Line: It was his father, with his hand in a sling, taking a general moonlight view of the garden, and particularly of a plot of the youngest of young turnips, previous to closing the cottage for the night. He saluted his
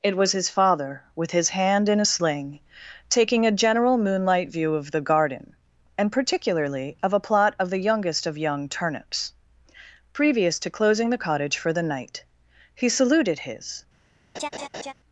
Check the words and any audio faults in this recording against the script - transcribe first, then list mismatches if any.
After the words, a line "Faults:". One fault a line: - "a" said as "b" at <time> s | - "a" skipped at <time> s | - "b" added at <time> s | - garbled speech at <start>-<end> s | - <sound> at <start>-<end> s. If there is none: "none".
It was his father, with his hand in a sling, taking a general moonlight view of the garden, and particularly of a plot of the youngest of young turnips, previous to closing the cottage for the night. He saluted his
Faults:
- laugh at 14.3-14.9 s